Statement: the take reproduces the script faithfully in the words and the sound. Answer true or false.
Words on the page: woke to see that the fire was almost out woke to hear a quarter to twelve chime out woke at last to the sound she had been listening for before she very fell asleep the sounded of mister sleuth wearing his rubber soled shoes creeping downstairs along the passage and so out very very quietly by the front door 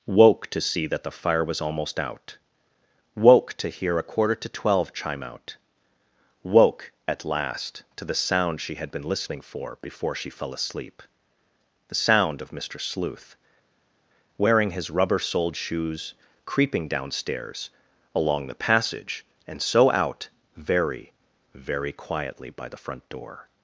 false